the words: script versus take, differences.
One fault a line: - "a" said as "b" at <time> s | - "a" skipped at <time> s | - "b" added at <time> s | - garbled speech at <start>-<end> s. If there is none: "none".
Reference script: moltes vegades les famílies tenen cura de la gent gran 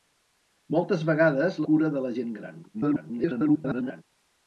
- "les famílies tenen" skipped at 1.6 s
- garbled speech at 2.7-4.0 s